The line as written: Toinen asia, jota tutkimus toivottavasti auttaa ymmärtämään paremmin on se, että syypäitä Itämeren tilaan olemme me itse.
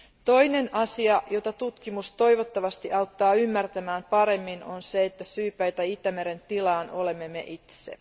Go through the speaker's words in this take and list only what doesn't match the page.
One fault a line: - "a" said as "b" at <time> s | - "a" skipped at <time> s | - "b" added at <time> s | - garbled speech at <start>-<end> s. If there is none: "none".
none